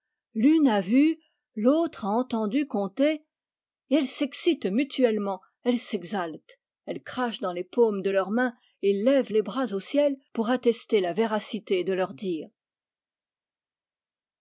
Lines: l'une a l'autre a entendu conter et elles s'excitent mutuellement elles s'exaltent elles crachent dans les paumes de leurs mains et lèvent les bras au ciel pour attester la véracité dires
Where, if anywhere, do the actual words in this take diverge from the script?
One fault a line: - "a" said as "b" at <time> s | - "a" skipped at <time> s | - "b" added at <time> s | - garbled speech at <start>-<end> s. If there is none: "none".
- "vu" added at 0.8 s
- "de leurs" added at 11.8 s